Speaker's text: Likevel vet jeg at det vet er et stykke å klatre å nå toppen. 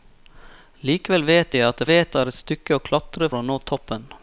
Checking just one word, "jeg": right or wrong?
right